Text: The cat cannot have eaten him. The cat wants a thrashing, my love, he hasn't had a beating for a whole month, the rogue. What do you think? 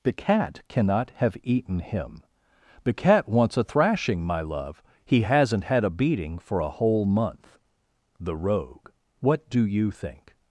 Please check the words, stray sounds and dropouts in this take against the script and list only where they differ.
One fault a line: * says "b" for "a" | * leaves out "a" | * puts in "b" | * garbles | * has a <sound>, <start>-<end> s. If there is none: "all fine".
all fine